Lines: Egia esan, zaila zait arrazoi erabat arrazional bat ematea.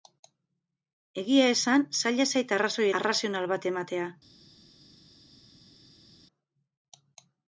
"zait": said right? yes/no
yes